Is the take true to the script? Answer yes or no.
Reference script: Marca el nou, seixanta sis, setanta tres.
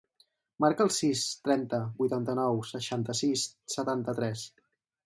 no